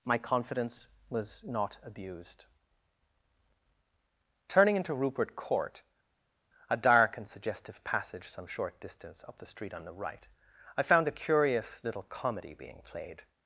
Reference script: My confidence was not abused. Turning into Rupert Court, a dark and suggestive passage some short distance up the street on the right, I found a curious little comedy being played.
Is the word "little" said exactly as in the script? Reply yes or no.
yes